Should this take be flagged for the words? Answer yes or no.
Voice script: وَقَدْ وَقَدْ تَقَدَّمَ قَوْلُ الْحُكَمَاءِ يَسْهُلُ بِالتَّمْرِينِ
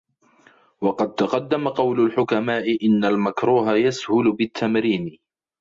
yes